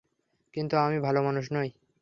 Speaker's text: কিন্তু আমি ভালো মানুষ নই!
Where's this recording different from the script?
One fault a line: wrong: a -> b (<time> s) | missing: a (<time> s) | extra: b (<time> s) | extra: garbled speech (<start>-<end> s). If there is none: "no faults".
no faults